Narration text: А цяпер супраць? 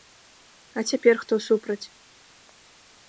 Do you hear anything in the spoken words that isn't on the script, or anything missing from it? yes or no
yes